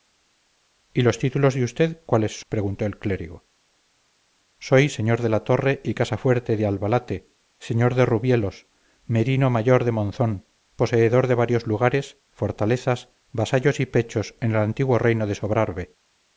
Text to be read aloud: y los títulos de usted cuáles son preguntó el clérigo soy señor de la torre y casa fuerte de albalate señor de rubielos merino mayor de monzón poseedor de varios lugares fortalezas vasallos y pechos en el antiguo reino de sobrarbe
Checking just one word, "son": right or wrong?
wrong